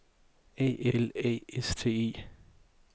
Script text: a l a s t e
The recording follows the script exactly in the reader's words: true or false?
true